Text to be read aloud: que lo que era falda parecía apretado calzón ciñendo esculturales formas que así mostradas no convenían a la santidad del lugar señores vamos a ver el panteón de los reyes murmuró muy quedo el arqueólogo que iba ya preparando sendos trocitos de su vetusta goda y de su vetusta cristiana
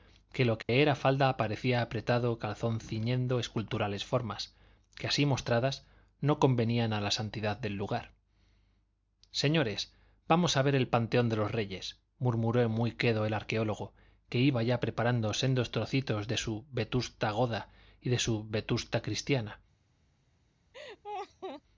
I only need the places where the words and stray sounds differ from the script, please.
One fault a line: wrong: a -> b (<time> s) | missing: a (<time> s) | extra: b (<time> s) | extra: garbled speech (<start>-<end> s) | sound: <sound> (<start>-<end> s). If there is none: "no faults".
sound: dropout (0.6-0.7 s)
sound: laugh (20.7-21.6 s)